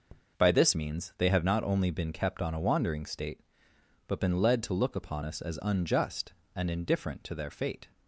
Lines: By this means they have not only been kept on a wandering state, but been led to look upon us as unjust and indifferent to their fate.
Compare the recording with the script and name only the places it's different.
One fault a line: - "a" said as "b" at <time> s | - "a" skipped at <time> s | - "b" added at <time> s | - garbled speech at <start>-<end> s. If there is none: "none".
none